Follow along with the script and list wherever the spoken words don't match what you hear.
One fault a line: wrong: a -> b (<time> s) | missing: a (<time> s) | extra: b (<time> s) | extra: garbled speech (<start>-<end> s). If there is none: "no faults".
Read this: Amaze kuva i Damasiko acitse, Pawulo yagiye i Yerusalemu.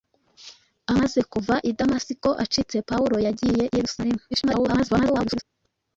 extra: garbled speech (4.3-5.4 s)